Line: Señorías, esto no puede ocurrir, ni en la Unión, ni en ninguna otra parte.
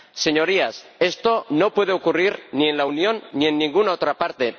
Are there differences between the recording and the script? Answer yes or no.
no